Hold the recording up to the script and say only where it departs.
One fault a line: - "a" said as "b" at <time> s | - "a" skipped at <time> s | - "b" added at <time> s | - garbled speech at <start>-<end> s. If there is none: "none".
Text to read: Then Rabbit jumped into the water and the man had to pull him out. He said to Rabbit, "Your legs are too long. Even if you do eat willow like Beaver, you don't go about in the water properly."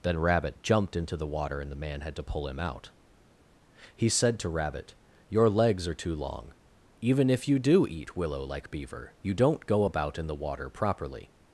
none